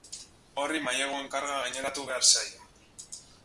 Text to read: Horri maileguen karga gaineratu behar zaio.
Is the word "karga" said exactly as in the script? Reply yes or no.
yes